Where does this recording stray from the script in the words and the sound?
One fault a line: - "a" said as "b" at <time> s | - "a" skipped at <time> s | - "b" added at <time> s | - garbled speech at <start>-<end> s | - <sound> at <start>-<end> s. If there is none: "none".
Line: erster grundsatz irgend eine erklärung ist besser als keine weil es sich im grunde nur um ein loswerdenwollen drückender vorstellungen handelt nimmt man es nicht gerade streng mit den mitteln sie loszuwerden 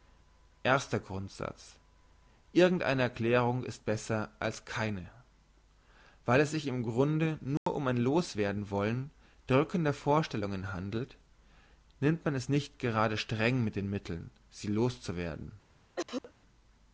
- dropout at 7.6-7.7 s
- cough at 16.0-16.3 s